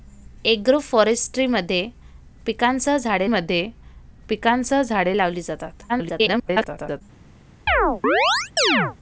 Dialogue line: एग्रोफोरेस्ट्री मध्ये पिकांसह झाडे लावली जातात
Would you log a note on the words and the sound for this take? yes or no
yes